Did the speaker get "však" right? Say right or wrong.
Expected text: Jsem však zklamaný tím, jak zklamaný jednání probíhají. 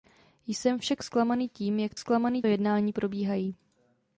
right